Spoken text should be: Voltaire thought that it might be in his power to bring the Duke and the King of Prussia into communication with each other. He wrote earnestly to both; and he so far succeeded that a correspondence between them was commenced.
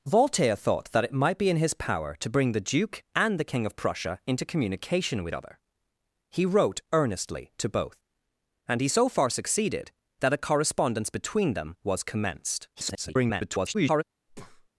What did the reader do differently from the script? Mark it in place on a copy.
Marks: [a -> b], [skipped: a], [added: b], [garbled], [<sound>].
Voltaire thought that it might be in his power to bring the Duke and the King of Prussia into communication with [skipped: each] other. He wrote earnestly to both; and he so far succeeded that a correspondence between them was commenced. [garbled] [breath]